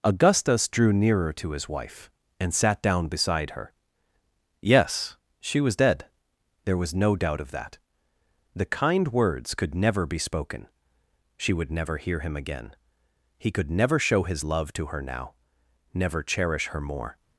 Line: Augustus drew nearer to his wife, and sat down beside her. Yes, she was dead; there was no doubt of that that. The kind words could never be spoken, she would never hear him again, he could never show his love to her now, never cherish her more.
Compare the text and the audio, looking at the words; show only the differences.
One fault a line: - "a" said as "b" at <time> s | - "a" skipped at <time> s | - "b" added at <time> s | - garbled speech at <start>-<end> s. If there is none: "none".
- "that" skipped at 7.8 s